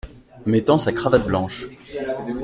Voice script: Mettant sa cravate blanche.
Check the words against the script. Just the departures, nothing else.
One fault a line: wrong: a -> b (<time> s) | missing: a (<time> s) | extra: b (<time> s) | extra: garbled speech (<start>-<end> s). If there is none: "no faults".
no faults